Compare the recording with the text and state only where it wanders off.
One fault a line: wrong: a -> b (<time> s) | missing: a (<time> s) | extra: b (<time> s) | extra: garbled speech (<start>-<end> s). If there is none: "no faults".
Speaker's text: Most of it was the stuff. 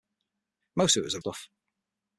no faults